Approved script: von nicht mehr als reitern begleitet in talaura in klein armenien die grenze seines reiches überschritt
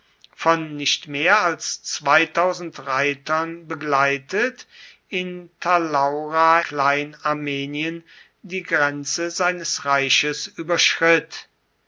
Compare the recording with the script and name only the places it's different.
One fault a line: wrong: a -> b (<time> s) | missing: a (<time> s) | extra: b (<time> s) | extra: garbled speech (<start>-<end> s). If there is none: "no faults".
missing: in (6.6 s)